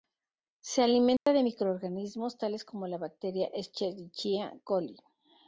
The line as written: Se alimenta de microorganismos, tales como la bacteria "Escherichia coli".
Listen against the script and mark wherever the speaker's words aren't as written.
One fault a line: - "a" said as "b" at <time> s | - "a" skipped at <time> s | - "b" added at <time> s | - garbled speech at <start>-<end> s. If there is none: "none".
none